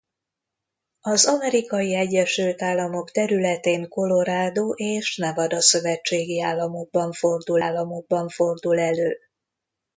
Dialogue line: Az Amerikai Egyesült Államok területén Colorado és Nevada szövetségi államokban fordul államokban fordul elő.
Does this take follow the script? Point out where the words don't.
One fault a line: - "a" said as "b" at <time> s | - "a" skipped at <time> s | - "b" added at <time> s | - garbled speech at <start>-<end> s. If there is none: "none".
none